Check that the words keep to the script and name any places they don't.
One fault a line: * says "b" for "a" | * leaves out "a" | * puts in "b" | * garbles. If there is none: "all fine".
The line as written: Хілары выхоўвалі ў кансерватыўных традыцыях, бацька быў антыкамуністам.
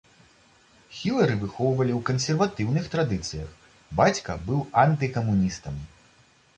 all fine